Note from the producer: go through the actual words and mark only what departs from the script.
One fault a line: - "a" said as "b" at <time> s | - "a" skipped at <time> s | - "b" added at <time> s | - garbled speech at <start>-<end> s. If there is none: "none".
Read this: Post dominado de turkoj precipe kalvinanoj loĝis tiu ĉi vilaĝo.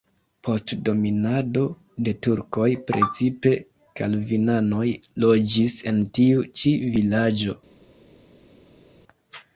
- "en" added at 5.9 s